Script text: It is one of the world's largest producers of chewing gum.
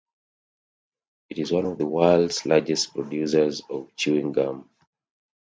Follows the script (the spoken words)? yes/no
yes